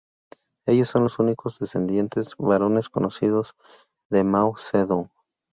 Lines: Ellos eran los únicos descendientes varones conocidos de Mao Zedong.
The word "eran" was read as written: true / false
false